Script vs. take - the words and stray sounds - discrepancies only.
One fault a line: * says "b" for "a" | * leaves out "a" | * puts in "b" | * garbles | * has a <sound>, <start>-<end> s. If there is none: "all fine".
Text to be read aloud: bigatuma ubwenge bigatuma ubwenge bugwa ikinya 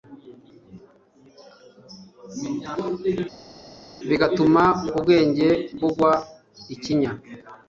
* leaves out "bigatuma ubwenge"